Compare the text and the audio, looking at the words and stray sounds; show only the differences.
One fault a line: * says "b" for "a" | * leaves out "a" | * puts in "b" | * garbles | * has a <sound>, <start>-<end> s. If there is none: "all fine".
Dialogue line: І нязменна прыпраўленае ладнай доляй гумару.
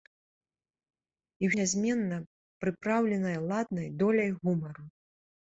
all fine